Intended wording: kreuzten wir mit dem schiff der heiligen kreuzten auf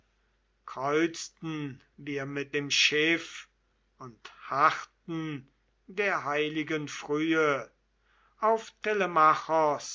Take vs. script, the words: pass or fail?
fail